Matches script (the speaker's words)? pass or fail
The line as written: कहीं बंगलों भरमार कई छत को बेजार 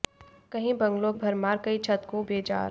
pass